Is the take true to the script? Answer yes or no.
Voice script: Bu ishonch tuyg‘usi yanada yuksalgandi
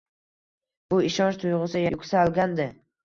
no